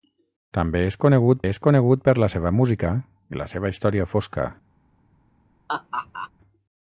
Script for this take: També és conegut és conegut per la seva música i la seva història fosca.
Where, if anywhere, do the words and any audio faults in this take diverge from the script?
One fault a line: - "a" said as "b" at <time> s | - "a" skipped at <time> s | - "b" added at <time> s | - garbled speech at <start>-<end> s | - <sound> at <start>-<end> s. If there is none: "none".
- laugh at 5.7-6.3 s